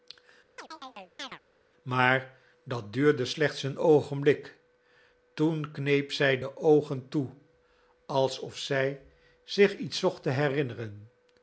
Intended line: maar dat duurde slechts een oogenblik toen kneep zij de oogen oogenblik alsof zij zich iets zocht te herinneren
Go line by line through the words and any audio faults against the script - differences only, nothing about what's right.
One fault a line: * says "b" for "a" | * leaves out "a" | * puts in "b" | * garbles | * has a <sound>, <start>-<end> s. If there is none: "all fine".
* has a chirp, 0.6-1.4 s
* says "toe" for "oogenblik"